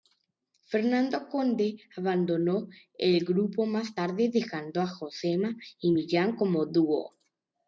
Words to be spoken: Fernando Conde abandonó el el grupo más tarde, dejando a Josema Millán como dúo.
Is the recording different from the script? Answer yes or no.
yes